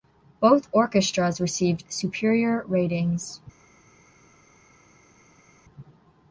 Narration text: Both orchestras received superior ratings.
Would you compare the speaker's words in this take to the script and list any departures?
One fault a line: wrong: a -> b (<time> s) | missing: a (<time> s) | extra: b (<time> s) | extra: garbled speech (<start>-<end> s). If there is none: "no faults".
no faults